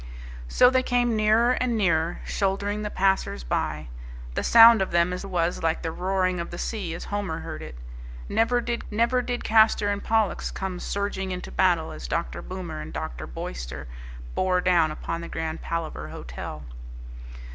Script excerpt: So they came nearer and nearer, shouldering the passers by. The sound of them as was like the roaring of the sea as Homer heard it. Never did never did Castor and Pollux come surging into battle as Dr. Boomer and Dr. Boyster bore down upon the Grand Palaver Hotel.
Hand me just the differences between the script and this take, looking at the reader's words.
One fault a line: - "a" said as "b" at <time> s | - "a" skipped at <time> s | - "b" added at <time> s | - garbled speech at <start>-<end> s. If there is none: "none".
none